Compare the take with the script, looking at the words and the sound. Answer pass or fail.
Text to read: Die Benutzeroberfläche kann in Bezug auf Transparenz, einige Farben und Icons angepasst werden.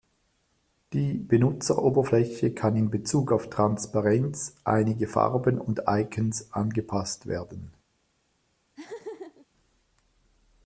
fail